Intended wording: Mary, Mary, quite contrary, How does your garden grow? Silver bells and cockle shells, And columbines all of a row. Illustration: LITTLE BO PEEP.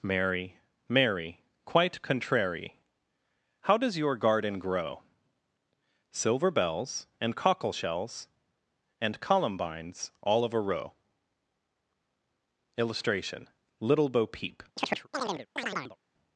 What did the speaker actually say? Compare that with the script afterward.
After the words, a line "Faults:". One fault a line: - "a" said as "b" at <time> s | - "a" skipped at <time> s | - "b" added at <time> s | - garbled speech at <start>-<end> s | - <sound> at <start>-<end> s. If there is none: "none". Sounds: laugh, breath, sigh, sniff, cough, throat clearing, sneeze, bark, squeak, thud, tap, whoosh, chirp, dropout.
Mary, Mary, quite contrary, How does your garden grow? Silver bells and cockle shells, And columbines all of a row. Illustration: LITTLE BO PEEP.
Faults:
- chirp at 14.8-16.0 s